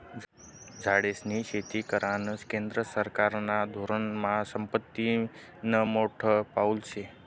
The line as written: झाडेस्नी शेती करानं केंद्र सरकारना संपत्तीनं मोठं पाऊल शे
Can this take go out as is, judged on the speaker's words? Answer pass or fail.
fail